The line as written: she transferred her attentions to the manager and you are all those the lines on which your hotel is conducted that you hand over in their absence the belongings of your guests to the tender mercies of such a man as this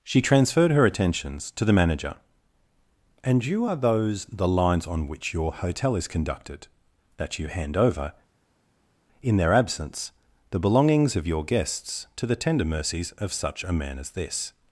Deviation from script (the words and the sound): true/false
true